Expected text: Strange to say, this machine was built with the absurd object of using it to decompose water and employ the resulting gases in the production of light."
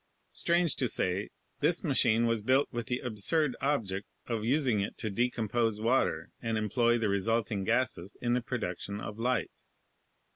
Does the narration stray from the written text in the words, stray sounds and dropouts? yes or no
no